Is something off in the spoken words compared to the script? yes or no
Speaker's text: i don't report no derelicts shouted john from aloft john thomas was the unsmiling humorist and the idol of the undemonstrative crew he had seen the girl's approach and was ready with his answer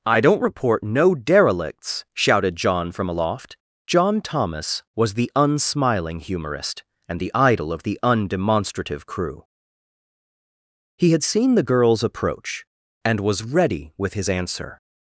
no